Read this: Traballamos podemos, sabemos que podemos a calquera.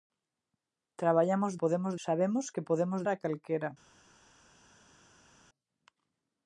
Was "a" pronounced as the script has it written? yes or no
yes